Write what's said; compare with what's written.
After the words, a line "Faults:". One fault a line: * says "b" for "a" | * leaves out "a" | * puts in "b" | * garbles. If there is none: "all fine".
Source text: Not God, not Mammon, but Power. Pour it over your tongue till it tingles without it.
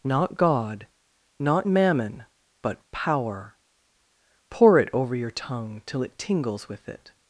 Not God, not Mammon, but Power. Pour it over your tongue till it tingles with it.
Faults:
* says "with" for "without"